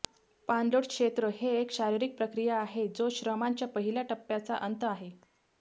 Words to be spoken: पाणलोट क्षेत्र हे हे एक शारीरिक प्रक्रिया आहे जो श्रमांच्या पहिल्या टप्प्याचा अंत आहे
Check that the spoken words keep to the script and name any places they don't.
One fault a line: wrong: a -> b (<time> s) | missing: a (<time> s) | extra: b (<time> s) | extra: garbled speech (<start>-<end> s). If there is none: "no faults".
missing: हे (1.5 s)